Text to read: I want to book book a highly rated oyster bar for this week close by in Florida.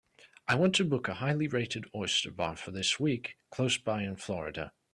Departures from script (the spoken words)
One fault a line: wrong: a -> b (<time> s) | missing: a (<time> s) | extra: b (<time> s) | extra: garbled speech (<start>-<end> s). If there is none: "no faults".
missing: book (1.1 s)